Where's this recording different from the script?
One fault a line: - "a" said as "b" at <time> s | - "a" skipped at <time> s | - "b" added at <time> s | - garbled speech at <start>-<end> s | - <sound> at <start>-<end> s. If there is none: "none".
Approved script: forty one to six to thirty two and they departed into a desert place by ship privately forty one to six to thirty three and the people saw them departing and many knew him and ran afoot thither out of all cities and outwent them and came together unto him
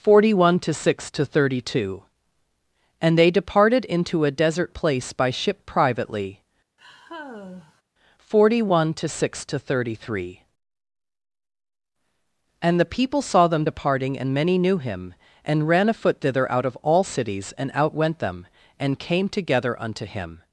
- sigh at 6.8-7.8 s